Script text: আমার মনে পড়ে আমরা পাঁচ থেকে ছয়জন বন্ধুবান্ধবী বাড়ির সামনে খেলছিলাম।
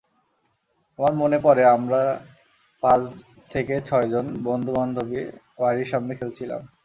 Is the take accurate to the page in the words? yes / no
yes